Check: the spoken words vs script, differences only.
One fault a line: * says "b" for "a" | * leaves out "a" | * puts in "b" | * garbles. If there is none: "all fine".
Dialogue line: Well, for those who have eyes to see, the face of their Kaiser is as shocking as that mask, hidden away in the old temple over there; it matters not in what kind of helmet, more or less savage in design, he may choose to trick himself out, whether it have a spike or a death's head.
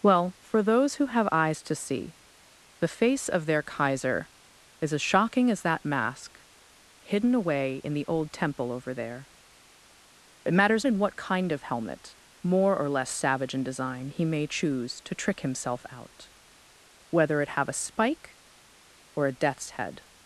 * leaves out "not"